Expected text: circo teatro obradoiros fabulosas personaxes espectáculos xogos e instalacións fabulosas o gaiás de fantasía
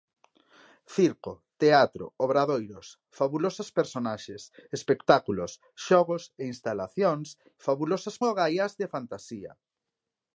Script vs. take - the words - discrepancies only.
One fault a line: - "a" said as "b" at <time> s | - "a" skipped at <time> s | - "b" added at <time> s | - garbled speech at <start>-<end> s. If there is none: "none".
none